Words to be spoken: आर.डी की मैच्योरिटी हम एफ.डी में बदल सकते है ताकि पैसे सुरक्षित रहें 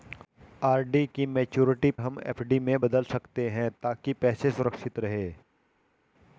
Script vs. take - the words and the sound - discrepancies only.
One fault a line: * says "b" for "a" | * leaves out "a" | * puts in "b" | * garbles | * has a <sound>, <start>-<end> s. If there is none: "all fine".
all fine